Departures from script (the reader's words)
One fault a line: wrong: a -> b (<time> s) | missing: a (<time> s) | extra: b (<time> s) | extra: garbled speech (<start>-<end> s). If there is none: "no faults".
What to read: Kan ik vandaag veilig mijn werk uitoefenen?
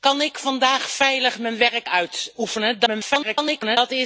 extra: garbled speech (2.9-3.8 s)